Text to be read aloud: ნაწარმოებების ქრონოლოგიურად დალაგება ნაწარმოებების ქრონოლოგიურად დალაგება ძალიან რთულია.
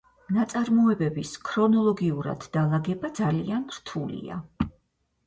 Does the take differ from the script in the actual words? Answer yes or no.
yes